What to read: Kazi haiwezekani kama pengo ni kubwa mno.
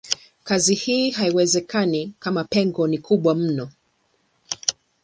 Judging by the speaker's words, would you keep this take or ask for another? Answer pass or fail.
fail